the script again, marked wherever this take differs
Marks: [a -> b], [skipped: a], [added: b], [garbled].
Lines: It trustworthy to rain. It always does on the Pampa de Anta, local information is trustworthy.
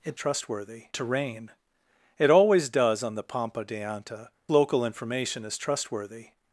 It trustworthy to rain. It always does on the Pampa de Anta, local information is trustworthy.